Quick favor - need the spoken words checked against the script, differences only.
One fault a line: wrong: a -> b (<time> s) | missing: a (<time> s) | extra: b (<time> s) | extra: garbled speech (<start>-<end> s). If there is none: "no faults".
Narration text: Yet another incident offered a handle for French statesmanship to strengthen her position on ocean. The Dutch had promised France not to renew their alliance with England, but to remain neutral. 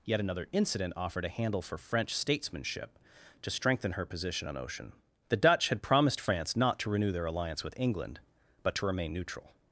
no faults